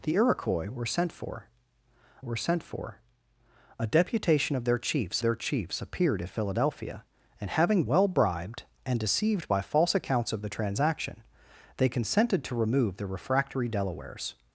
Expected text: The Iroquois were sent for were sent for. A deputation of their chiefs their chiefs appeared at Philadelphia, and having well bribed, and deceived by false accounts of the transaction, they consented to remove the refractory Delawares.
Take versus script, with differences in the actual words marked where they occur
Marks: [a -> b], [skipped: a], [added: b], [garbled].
The Iroquois were sent for were sent for. A deputation of their chiefs their chiefs appeared at Philadelphia, and having well bribed, and deceived by false accounts of the transaction, they consented to remove the refractory Delawares.